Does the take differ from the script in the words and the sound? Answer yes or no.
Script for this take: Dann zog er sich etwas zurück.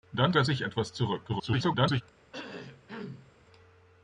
yes